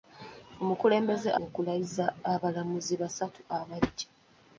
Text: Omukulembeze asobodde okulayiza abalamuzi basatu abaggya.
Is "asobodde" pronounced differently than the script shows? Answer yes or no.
yes